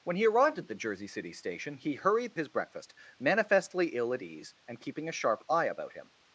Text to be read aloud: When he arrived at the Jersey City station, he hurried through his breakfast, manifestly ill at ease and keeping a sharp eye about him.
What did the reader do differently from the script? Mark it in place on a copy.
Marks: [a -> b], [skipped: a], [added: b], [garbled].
When he arrived at the Jersey City station, he hurried [skipped: through] his breakfast, manifestly ill at ease and keeping a sharp eye about him.